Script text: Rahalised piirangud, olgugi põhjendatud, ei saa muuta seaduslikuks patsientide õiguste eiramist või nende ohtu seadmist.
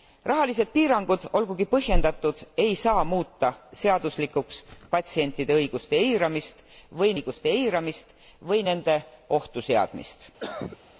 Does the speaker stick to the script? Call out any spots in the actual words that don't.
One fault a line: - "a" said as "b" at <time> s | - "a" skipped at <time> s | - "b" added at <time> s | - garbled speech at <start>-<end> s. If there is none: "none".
- "õiguste eiramist või" added at 7.1 s